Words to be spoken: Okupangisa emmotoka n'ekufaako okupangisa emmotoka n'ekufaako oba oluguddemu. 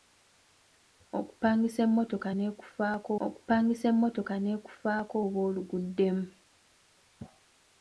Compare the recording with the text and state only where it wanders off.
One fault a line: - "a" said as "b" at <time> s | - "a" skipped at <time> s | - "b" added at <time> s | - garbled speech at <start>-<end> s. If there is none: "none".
none